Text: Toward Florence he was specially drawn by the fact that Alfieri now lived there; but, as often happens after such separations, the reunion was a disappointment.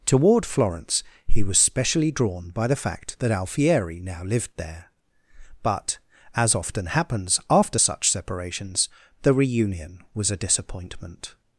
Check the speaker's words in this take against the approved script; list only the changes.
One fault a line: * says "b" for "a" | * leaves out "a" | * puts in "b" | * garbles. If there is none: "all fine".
all fine